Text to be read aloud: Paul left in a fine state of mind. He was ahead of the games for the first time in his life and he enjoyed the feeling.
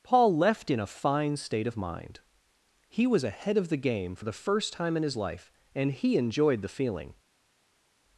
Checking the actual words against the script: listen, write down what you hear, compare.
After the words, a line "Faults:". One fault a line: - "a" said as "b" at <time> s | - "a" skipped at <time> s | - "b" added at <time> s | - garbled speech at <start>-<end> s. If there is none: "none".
Paul left in a fine state of mind. He was ahead of the game for the first time in his life and he enjoyed the feeling.
Faults:
- "games" said as "game" at 3.8 s